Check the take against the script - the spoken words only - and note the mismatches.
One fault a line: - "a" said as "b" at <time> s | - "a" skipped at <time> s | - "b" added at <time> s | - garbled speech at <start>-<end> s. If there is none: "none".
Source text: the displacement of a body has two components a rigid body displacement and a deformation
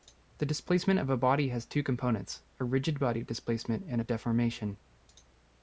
none